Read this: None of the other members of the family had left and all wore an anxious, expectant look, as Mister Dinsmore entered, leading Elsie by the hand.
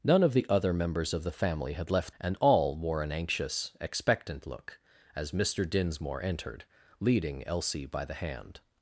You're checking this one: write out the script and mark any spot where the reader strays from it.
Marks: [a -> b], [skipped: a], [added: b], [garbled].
None of the other members of the family had left and all wore an anxious, expectant look, as Mister Dinsmore entered, leading Elsie by the hand.